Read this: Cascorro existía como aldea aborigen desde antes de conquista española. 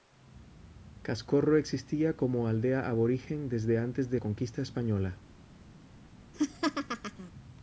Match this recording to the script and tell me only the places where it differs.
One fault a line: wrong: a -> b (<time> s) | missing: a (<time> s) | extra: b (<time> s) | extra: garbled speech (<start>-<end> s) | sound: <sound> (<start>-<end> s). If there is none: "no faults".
sound: laugh (6.3-7.3 s)